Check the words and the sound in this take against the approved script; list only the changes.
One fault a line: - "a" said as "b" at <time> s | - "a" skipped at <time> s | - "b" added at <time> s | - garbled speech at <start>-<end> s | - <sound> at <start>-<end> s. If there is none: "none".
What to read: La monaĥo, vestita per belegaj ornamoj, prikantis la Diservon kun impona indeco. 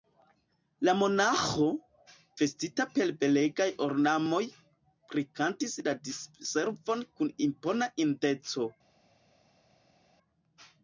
none